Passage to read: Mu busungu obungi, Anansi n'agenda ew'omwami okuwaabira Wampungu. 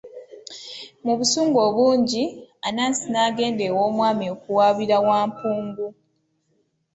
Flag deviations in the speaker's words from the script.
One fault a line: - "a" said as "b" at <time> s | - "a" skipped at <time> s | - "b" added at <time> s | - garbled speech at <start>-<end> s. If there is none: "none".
none